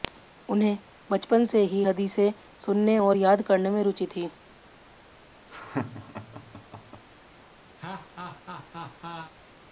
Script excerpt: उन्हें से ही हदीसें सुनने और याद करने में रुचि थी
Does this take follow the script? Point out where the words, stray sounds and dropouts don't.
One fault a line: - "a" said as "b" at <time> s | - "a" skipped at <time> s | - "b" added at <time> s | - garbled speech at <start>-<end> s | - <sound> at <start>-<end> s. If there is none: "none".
- "बचपन" added at 1.1 s
- laugh at 5.5-7.1 s
- laugh at 7.8-9.3 s